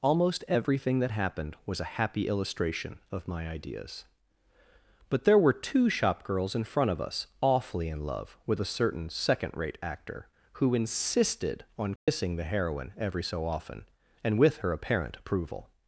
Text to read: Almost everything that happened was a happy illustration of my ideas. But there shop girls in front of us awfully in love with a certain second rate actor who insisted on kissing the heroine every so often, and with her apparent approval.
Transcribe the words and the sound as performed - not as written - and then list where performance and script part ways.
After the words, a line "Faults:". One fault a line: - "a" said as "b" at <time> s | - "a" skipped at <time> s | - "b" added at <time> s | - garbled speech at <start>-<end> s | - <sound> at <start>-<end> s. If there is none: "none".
Almost everything that happened was a happy illustration of my ideas. But there were two shop girls in front of us awfully in love with a certain second rate actor who insisted on kissing the heroine every so often, and with her apparent approval.
Faults:
- "were two" added at 5.4 s
- dropout at 12.0-12.1 s